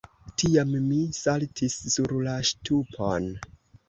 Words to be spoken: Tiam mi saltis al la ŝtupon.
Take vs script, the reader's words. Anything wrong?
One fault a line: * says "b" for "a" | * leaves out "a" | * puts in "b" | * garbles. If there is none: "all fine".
* says "sur" for "al"